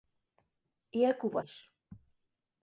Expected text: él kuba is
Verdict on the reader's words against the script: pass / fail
pass